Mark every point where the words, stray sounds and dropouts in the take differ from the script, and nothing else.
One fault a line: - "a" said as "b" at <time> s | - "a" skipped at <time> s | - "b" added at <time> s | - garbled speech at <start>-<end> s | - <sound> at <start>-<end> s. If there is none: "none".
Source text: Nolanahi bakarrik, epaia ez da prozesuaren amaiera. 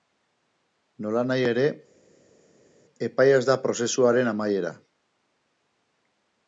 - "bakarrik" said as "ere" at 1.5 s